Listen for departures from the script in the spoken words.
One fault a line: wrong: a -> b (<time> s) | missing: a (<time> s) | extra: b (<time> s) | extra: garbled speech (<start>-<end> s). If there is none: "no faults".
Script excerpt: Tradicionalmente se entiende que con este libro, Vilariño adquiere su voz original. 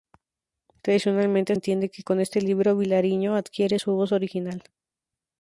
missing: se (1.6 s)